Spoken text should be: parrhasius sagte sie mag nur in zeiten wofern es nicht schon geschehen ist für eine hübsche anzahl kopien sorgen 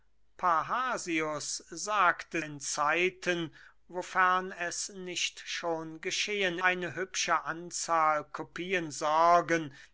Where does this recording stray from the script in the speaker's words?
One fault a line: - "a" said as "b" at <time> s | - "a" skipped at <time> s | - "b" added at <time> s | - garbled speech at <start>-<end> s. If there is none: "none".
- "sie mag nur" skipped at 2.4 s
- "ist für" skipped at 6.6 s